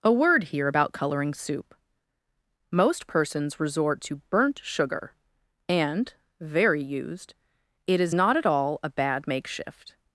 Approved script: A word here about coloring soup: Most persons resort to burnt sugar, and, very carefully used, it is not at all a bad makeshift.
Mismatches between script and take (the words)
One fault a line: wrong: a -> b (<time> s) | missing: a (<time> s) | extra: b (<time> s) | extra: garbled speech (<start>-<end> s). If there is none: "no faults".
missing: carefully (6.8 s)